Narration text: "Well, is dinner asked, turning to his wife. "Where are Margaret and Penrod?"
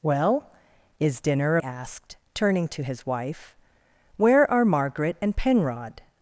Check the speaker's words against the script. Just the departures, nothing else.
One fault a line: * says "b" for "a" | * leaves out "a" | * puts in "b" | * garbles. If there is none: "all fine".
all fine